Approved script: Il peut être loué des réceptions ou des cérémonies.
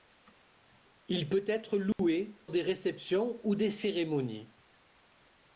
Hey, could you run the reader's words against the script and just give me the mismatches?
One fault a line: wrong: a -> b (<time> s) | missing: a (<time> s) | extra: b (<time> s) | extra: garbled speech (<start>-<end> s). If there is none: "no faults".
no faults